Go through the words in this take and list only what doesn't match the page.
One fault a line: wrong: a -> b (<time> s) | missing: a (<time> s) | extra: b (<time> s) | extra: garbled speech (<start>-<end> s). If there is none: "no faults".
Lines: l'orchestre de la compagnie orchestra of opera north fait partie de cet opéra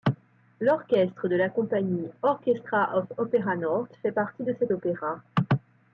no faults